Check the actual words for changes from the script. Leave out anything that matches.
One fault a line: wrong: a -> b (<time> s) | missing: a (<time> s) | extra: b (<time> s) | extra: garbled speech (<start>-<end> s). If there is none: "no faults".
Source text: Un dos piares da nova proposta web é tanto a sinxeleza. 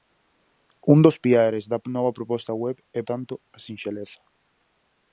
no faults